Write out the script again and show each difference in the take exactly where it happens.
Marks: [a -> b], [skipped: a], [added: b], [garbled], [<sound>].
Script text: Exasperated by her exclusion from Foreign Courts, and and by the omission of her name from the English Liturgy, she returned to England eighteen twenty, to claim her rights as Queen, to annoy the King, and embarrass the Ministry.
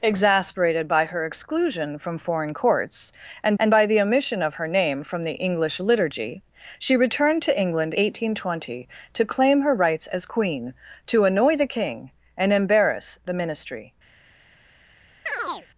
Exasperated by her exclusion from Foreign Courts, and and by the omission of her name from the English Liturgy, she returned to England eighteen twenty, to claim her rights as Queen, to annoy the King, and embarrass the Ministry. [chirp]